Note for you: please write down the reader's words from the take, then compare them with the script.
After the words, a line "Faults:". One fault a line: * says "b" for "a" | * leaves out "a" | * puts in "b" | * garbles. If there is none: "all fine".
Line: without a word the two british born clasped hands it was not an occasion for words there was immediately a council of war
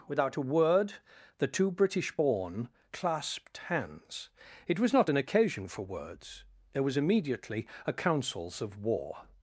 without a word the two british born clasped hands it was not an occasion for words there was immediately a councils of war
Faults:
* says "councils" for "council"